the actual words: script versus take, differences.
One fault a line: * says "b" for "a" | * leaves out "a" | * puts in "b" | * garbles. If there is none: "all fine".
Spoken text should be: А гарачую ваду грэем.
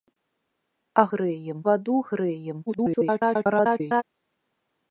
* says "грэем" for "гарачую"
* garbles